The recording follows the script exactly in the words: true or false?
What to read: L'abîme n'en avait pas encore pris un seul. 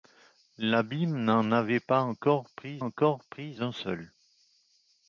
false